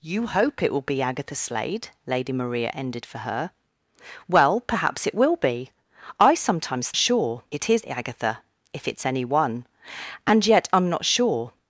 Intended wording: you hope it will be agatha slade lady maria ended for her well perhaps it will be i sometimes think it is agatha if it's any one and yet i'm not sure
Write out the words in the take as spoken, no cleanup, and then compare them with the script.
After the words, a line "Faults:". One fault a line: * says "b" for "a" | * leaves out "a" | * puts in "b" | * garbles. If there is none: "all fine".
you hope it will be agatha slade lady maria ended for her well perhaps it will be i sometimes sure it is agatha if it's any one and yet i'm not sure
Faults:
* says "sure" for "think"